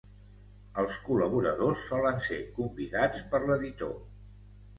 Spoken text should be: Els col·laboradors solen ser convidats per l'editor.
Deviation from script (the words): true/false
false